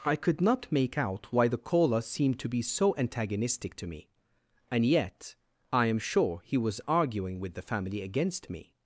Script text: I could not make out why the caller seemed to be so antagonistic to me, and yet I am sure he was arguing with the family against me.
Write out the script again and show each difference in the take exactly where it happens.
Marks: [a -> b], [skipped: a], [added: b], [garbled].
I could not make out why the caller seemed to be so antagonistic to me, and yet I am sure he was arguing with the family against me.